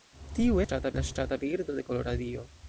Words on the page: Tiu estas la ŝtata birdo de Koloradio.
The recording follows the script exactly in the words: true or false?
false